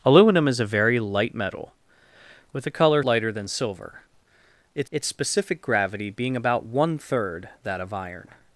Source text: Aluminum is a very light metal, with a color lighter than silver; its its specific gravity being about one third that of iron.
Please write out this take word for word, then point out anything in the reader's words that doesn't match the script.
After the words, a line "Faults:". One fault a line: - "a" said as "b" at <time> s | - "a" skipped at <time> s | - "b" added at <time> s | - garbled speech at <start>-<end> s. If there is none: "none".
Aluminum is a very light metal, with a color lighter than silver; its its specific gravity being about one third that of iron.
Faults:
none